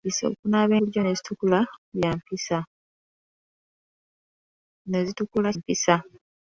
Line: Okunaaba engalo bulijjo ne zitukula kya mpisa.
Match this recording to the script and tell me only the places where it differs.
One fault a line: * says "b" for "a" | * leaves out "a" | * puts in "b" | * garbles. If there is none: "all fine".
* leaves out "engalo"
* leaves out "kya"